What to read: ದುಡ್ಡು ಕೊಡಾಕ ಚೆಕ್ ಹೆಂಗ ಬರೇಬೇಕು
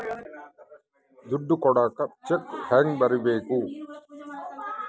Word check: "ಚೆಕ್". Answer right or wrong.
right